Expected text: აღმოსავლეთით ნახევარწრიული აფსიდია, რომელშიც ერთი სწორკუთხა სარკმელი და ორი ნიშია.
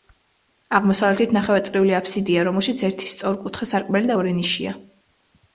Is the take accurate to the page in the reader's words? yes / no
yes